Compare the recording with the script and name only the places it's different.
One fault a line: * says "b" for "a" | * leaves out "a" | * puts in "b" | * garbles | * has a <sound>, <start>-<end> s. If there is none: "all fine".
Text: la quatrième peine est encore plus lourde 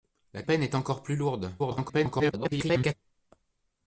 * leaves out "quatrième"
* garbles